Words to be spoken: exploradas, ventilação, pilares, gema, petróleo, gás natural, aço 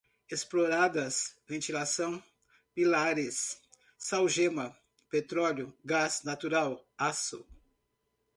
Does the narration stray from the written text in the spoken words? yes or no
yes